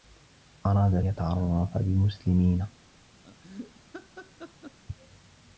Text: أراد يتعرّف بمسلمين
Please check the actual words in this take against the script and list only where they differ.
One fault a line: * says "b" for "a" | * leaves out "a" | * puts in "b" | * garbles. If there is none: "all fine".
all fine